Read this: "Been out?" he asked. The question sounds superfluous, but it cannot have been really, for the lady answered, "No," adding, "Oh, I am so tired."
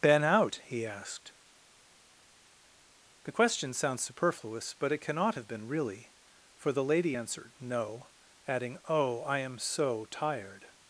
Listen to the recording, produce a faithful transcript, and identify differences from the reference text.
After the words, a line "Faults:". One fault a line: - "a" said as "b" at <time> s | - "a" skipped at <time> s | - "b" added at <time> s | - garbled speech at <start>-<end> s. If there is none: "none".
"Been out?" he asked. The question sounds superfluous, but it cannot have been really, for the lady answered, "No," adding, "Oh, I am so tired."
Faults:
none